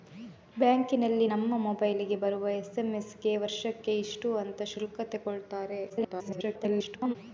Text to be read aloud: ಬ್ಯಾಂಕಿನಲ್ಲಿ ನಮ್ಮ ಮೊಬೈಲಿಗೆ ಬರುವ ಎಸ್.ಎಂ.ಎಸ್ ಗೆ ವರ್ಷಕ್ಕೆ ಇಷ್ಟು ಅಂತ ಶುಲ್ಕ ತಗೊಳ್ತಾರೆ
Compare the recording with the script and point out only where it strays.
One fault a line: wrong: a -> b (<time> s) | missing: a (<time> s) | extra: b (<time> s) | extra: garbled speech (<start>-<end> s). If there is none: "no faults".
extra: garbled speech (5.9-7.2 s)